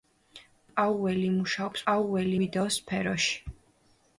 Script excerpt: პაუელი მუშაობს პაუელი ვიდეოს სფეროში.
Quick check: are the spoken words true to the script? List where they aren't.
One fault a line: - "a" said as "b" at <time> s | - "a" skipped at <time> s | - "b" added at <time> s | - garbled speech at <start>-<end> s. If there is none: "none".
none